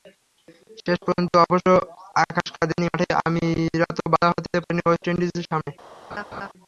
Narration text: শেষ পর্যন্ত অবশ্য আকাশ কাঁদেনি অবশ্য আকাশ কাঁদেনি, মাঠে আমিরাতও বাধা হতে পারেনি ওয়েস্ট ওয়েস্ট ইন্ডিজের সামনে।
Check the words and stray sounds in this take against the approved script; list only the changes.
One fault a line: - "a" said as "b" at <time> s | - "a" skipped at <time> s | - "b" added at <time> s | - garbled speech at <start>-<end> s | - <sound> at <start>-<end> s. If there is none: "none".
- "অবশ্য আকাশ কাঁদেনি" skipped at 2.9 s
- "ওয়েস্ট" skipped at 5.0 s
- laugh at 6.1-6.5 s